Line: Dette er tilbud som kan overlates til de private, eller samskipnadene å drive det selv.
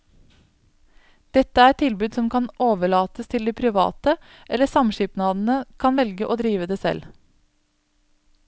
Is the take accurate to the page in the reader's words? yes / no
no